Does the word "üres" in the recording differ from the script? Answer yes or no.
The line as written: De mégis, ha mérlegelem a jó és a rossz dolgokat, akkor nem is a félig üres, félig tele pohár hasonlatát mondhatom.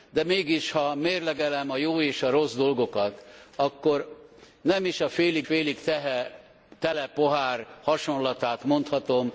yes